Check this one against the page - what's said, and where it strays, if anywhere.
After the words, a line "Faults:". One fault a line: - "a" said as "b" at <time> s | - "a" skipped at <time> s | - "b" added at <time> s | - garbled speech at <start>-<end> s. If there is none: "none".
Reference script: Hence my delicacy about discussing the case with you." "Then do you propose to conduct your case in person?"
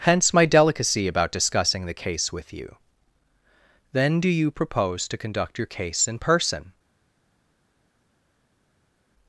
Hence my delicacy about discussing the case with you." "Then do you propose to conduct your case in person?"
Faults:
none